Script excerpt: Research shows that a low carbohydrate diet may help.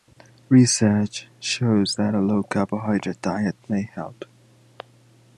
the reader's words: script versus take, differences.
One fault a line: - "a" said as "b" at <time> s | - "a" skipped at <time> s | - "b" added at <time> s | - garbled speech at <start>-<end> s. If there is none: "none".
none